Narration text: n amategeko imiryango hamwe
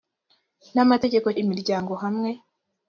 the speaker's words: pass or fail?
pass